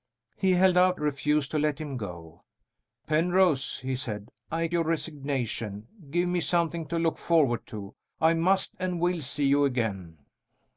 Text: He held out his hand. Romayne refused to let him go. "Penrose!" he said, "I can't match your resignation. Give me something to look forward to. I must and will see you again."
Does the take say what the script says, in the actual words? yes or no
no